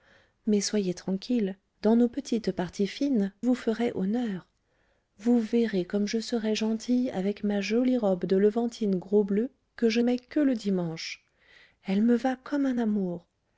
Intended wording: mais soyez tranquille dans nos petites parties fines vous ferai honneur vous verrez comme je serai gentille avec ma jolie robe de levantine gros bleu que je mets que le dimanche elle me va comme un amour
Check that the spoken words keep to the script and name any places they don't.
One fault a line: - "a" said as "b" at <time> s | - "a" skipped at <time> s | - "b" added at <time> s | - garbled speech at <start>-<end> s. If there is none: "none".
none